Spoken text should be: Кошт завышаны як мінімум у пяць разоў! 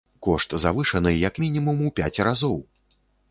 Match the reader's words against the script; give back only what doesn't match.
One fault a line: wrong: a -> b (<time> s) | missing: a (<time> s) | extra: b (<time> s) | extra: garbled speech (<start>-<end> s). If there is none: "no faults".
no faults